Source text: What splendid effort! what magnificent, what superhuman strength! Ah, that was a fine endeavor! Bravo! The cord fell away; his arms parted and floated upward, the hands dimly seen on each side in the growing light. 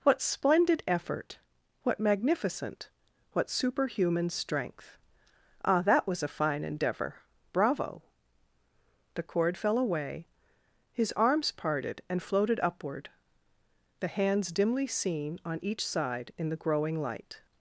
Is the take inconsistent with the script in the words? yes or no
no